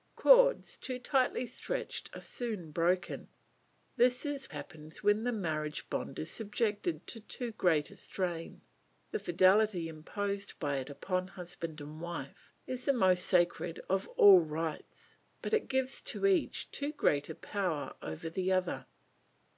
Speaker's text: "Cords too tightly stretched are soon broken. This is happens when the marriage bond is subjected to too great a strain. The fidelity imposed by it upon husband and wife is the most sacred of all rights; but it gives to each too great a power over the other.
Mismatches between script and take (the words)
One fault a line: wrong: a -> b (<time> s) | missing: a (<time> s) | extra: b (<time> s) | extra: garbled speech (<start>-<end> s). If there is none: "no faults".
no faults